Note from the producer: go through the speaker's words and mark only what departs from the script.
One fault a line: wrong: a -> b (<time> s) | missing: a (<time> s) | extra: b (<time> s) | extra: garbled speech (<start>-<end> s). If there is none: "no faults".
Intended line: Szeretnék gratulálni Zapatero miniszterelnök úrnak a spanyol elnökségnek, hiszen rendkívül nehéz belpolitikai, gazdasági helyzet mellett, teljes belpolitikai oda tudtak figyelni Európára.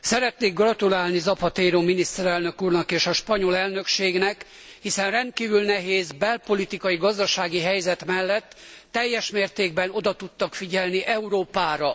extra: és (2.9 s)
wrong: belpolitikai -> mértékben (9.3 s)